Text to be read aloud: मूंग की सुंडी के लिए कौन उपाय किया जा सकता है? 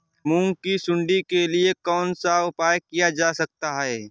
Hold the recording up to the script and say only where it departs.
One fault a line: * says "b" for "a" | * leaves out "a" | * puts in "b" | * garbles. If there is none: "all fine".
* puts in "सा"